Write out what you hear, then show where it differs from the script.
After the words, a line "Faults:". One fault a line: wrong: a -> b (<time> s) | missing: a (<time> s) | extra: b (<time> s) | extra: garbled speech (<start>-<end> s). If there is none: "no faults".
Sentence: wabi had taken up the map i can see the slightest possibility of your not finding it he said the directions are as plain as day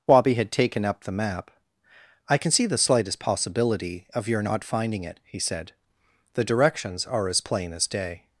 wabi had taken up the map i can see the slightest possibility of your not finding it he said the directions are as plain as day
Faults:
no faults